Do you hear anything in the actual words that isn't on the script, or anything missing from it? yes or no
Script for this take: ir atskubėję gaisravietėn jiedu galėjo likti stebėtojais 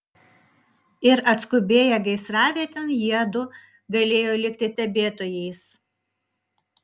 no